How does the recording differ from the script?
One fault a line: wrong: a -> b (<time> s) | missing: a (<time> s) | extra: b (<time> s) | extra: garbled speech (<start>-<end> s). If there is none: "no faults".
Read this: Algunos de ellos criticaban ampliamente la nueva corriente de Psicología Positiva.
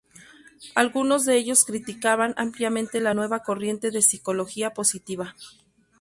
no faults